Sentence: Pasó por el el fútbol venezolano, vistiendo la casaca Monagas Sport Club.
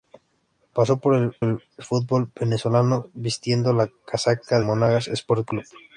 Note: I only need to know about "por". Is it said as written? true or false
true